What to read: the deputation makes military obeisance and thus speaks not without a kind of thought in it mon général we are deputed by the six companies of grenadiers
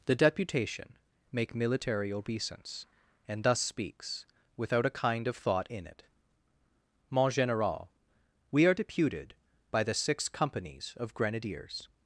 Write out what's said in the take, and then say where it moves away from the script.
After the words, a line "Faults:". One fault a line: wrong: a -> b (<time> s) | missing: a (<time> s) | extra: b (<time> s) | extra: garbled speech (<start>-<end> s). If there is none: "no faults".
the deputation make military obeisance and thus speaks without a kind of thought in it mon général we are deputed by the six companies of grenadiers
Faults:
wrong: makes -> make (1.3 s)
missing: not (4.3 s)